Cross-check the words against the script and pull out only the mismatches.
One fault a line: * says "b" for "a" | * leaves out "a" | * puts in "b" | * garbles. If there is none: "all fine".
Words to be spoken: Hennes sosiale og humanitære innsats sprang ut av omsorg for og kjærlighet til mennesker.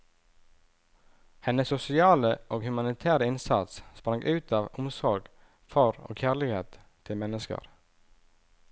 all fine